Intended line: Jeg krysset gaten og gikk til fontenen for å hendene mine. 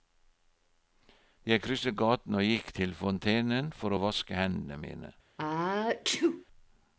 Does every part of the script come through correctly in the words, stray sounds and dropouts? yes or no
no